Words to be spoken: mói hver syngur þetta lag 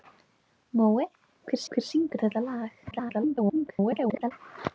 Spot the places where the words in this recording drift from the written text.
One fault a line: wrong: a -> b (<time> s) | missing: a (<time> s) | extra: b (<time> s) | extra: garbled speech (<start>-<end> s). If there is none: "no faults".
extra: hver (1.8 s)
extra: garbled speech (2.9-4.3 s)